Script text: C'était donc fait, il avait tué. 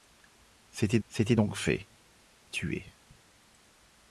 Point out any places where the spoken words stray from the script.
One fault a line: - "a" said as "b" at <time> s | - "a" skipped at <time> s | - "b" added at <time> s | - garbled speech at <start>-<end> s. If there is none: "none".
- "c'était" added at 1.1 s
- "il avait" skipped at 1.9 s